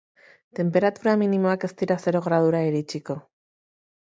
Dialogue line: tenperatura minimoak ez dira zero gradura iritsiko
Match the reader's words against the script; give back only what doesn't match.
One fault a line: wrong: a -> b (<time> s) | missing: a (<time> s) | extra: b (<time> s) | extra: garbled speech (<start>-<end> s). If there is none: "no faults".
no faults